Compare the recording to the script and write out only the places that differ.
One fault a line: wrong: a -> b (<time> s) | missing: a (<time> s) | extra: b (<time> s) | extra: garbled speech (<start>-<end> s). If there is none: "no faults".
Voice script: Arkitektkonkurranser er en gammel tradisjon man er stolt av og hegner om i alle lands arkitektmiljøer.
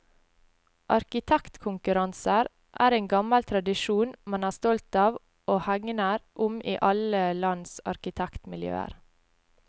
no faults